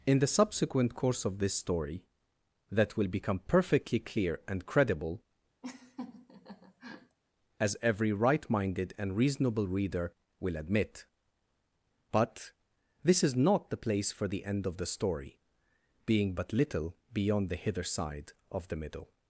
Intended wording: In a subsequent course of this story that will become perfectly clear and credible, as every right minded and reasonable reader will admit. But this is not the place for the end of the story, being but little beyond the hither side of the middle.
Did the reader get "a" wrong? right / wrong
wrong